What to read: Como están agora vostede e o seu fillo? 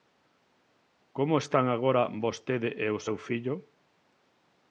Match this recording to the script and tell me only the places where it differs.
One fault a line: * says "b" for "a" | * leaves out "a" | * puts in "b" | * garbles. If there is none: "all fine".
all fine